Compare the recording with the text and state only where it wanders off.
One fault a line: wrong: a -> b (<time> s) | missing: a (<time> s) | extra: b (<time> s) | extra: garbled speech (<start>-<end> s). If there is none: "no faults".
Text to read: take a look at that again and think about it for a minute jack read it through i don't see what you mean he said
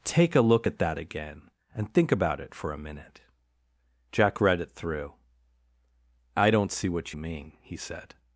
no faults